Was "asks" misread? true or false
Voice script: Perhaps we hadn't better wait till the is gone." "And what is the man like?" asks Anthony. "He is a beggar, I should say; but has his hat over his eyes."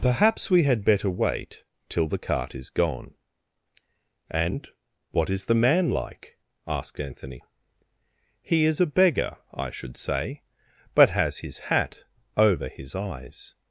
true